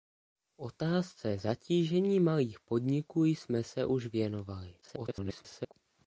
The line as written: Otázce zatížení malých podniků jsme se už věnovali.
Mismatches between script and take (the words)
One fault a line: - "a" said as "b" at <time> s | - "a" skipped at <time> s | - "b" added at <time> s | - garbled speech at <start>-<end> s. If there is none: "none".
- garbled speech at 4.8-5.7 s